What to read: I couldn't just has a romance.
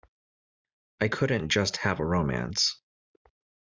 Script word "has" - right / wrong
wrong